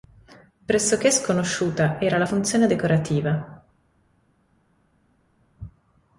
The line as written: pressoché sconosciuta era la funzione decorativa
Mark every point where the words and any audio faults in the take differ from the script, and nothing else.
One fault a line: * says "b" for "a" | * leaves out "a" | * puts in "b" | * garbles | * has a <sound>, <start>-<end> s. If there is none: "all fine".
all fine